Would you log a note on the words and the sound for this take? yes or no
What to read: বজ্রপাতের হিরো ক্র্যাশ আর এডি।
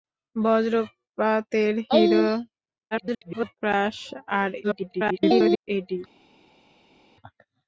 yes